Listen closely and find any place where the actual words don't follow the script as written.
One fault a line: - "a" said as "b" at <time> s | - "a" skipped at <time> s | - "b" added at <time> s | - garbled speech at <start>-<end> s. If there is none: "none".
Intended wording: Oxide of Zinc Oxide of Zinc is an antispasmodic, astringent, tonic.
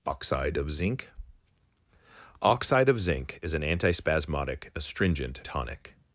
none